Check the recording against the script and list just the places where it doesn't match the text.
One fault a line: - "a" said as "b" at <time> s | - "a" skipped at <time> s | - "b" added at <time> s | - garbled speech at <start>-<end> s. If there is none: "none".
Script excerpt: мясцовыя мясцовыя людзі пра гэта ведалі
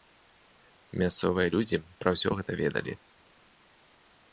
- "мясцовыя" skipped at 1.5 s
- "ўсё" added at 2.2 s